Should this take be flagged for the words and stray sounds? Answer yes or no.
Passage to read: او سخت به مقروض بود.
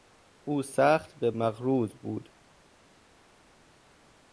no